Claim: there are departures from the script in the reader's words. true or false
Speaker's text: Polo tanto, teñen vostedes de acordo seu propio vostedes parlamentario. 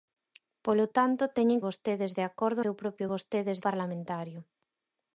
false